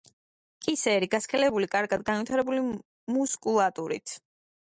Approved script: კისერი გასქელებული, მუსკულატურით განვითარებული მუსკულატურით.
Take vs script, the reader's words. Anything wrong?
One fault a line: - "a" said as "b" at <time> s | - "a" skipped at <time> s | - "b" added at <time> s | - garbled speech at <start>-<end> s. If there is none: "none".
- "მუსკულატურით" said as "კარგად" at 1.7 s